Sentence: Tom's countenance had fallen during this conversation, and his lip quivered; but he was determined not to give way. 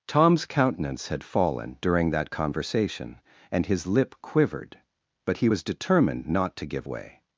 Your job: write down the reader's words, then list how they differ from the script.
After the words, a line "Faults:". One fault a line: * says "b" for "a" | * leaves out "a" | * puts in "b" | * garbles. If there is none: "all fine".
Tom's countenance had fallen during that conversation, and his lip quivered; but he was determined not to give way.
Faults:
* says "that" for "this"